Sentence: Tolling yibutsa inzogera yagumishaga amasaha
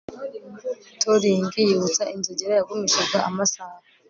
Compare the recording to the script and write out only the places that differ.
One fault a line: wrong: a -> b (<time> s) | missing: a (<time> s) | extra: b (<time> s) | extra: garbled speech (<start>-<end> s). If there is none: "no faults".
no faults